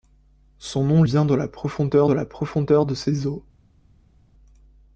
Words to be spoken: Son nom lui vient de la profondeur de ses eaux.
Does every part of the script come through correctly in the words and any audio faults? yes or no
no